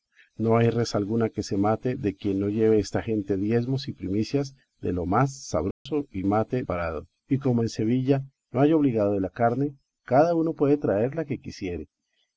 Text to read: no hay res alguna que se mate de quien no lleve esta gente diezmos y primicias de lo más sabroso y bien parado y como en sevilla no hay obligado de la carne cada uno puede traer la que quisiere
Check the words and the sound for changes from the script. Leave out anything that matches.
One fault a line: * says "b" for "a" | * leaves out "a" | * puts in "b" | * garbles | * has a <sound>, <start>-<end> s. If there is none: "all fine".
* has a dropout, 5.7-5.9 s
* says "mate" for "bien"